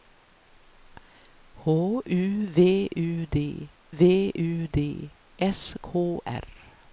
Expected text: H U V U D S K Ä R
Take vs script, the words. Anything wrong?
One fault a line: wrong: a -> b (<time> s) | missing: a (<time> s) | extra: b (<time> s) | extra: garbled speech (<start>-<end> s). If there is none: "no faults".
extra: V U D (3.9 s)
missing: Ä (6.2 s)